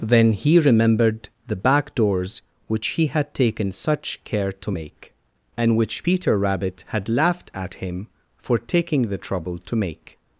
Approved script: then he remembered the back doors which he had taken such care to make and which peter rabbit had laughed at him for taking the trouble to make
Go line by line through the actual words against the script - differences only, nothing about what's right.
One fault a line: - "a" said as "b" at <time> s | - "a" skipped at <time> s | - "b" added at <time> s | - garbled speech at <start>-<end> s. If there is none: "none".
none